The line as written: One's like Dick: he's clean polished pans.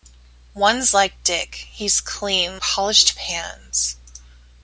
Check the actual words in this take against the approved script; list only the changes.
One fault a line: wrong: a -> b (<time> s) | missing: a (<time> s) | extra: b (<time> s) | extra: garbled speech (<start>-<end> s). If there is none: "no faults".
no faults